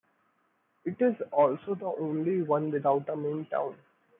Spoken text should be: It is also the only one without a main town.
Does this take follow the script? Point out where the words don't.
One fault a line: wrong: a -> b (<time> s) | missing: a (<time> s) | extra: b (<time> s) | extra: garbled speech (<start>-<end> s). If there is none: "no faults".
no faults